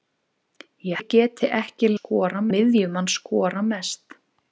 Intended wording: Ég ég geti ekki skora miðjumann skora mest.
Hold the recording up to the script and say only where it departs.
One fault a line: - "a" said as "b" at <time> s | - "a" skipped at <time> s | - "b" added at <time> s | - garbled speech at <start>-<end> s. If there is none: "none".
none